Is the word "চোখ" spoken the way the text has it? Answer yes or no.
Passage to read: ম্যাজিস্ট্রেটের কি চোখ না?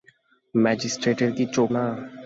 yes